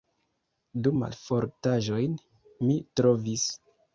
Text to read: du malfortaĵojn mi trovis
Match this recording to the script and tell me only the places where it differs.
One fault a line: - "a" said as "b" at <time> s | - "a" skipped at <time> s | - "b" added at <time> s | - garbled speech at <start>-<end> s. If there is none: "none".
none